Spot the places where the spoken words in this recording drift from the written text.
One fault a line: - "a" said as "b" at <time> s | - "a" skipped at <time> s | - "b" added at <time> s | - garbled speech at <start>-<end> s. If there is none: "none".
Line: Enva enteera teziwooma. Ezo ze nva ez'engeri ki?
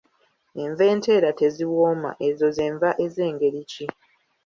none